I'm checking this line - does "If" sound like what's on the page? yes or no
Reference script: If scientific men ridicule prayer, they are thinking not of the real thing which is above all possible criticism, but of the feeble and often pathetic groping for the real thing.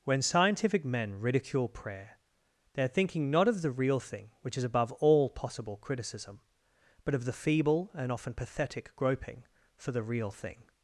no